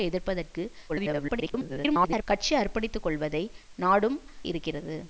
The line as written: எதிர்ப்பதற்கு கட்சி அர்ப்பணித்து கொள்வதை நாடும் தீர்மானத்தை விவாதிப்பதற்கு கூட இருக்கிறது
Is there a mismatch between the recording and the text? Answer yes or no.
yes